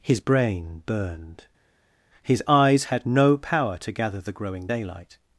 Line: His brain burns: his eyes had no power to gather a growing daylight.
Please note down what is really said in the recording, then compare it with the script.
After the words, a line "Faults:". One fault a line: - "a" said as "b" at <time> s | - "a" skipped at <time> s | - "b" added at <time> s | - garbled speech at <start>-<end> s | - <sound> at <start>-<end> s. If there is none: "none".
His brain burned: his eyes had no power to gather the growing daylight.
Faults:
- "burns" said as "burned" at 0.9 s
- "a" said as "the" at 4.2 s